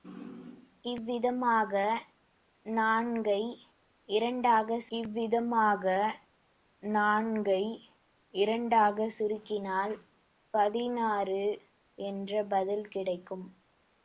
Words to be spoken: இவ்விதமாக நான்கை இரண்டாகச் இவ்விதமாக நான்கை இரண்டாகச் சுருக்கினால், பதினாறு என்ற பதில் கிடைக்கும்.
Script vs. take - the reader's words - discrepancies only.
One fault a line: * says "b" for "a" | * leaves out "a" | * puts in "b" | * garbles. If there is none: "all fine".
all fine